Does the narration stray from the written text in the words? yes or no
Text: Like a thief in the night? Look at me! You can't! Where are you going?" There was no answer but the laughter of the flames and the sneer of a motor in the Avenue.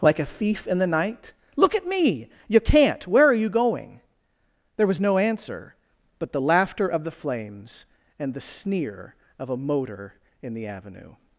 no